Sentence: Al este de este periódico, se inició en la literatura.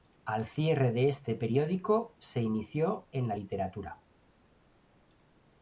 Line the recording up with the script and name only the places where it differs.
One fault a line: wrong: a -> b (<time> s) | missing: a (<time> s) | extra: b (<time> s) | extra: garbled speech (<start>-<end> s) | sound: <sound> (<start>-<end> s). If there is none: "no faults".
wrong: este -> cierre (0.5 s)